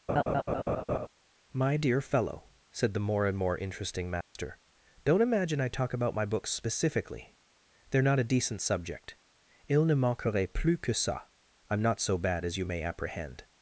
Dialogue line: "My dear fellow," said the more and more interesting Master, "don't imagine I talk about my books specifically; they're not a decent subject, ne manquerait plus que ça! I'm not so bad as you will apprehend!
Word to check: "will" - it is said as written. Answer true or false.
false